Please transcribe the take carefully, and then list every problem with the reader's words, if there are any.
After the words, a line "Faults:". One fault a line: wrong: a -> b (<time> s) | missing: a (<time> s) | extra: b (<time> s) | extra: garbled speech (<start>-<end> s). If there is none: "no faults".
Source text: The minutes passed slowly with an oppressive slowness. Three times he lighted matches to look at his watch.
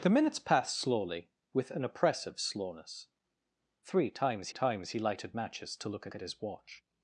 The minutes passed slowly with an oppressive slowness. Three times times he lighted matches to look at at his watch.
Faults:
extra: times (4.5 s)
extra: at (6.1 s)